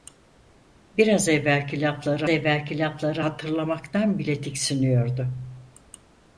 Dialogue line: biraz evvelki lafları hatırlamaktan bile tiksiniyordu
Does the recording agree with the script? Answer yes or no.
no